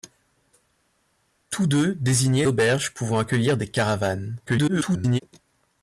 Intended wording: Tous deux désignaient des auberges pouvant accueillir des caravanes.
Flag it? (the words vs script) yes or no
yes